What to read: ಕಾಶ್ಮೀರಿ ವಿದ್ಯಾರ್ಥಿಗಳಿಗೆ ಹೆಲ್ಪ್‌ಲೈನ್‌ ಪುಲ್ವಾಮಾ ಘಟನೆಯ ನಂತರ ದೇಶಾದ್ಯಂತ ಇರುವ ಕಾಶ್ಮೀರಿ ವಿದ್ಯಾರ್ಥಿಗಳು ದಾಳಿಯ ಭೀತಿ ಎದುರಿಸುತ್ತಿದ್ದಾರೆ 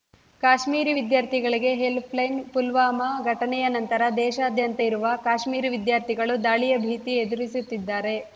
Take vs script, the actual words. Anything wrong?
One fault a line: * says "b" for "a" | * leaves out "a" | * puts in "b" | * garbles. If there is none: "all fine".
all fine